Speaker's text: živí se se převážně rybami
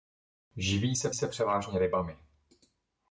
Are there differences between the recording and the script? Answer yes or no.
no